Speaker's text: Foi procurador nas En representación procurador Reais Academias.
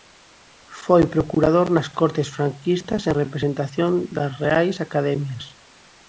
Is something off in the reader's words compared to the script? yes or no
yes